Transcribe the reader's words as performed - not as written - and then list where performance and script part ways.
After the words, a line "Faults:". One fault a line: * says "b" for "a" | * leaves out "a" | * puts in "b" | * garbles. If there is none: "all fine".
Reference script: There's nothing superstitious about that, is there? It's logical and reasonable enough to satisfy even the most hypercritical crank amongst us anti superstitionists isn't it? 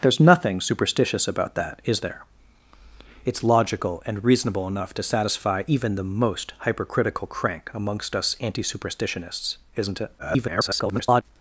There's nothing superstitious about that, is there? It's logical and reasonable enough to satisfy even the most hypercritical crank amongst us anti superstitionists isn't it? [garbled]
Faults:
* garbles